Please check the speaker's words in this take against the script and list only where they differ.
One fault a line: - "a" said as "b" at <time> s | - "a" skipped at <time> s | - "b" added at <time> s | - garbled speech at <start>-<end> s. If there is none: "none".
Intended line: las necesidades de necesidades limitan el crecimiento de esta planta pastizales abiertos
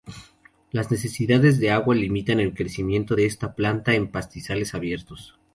- "necesidades" said as "agua" at 1.7 s
- "en" added at 3.9 s